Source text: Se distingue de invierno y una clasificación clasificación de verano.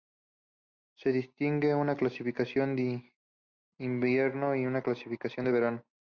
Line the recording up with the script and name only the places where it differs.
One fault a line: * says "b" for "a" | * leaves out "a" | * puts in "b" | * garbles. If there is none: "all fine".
* puts in "una clasificación"
* leaves out "clasificación"